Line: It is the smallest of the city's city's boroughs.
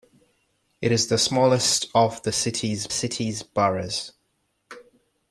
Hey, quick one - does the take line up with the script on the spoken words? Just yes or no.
yes